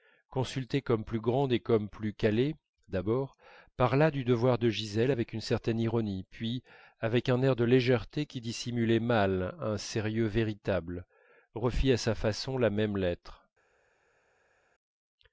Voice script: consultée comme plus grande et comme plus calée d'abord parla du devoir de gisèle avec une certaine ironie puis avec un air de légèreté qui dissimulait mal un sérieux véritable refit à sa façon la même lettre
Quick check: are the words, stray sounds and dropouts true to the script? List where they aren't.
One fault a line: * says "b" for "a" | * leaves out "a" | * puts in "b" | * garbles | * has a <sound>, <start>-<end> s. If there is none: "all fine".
all fine